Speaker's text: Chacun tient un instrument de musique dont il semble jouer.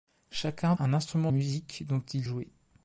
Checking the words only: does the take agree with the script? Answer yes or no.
no